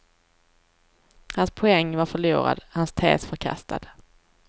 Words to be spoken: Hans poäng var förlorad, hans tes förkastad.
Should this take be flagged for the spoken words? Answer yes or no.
no